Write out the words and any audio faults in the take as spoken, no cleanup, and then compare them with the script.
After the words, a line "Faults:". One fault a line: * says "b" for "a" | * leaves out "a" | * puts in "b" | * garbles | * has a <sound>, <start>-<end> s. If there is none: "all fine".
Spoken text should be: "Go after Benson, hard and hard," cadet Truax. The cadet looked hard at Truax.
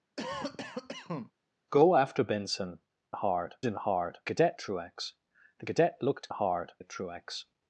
"Go after Benson, hard and hard," cadet Truax. The cadet looked hard at Truax.
Faults:
* has a cough, 0.2-1.3 s